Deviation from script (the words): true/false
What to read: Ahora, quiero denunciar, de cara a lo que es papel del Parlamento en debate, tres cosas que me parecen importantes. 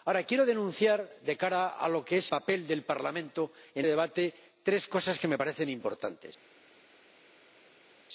false